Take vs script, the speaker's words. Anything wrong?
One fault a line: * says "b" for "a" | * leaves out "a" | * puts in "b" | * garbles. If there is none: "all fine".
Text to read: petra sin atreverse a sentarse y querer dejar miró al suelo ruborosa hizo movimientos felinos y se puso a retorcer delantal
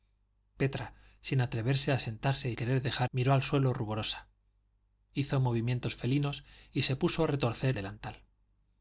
all fine